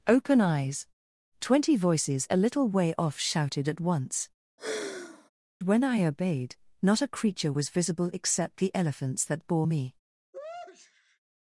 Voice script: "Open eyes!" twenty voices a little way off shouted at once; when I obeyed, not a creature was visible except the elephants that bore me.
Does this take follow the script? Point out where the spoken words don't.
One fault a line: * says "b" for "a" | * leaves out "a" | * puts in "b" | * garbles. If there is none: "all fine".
all fine